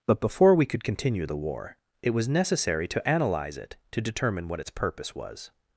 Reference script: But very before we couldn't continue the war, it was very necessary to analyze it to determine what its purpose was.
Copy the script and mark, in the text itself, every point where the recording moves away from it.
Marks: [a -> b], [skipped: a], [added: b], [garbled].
But [skipped: very] before we [couldn't -> could] continue the war, it was [skipped: very] necessary to analyze it to determine what its purpose was.